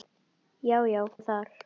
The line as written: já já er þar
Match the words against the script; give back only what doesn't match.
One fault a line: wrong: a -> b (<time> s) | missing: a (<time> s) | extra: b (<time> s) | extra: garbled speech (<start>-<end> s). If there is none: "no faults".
no faults